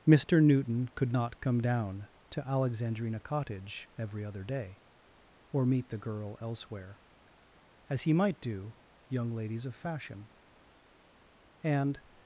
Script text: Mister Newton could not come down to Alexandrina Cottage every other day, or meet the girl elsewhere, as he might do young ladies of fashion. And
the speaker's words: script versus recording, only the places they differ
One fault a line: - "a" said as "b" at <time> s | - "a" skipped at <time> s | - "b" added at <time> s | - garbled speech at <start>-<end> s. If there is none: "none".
none